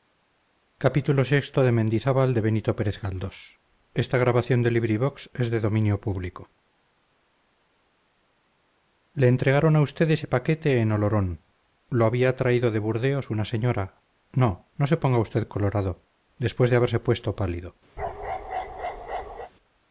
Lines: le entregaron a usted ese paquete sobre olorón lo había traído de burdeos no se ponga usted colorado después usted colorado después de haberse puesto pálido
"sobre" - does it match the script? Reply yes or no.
no